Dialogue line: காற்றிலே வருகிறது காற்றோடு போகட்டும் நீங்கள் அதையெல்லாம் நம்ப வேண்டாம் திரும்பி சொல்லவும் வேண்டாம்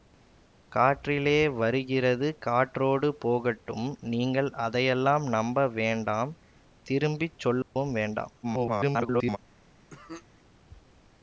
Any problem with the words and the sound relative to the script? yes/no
yes